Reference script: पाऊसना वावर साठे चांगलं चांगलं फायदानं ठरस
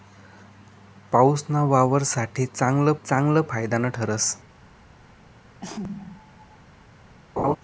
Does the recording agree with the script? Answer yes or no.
yes